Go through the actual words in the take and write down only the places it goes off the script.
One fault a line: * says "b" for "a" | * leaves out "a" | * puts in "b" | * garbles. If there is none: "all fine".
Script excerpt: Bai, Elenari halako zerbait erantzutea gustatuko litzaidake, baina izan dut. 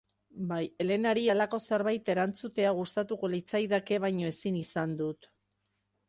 * puts in "ezin"